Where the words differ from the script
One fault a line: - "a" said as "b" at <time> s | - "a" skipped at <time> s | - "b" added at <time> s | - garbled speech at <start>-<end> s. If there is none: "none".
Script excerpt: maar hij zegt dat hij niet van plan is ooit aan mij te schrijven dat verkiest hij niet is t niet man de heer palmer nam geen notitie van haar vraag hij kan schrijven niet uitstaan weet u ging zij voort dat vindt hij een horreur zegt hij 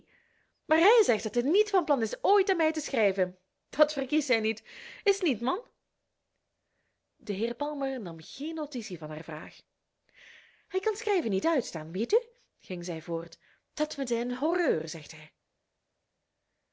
none